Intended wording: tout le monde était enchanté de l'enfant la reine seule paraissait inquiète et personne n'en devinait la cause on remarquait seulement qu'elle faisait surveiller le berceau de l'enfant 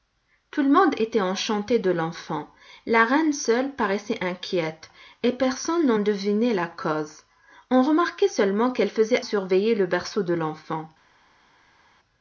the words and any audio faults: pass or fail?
pass